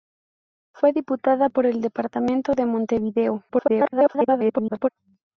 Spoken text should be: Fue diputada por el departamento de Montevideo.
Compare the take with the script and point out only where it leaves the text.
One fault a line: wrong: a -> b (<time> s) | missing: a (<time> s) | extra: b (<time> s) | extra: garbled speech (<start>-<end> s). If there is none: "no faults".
extra: garbled speech (3.5-4.9 s)